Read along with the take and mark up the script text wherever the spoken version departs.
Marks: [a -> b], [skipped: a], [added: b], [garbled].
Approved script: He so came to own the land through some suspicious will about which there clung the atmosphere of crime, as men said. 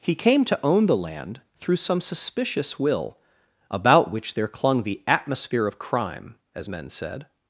He [skipped: so] came to own the land through some suspicious will about which there clung the atmosphere of crime, as men said.